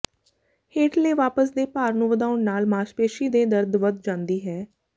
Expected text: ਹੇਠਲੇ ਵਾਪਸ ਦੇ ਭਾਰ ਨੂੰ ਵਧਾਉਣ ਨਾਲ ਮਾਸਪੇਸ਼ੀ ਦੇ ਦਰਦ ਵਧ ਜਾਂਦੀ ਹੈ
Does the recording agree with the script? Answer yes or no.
yes